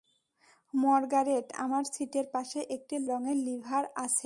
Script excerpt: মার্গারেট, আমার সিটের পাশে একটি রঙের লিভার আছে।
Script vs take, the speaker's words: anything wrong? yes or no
no